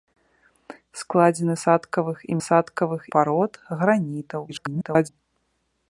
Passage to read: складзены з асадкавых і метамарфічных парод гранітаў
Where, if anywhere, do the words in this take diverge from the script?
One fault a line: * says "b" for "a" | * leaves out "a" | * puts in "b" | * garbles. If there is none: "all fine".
* leaves out "з"
* says "асадкавых" for "метамарфічных"
* garbles